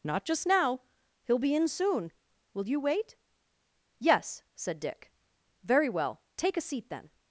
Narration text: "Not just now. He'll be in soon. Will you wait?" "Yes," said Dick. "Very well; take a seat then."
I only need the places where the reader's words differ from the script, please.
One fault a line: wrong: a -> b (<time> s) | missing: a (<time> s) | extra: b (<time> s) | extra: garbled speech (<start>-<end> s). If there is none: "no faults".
no faults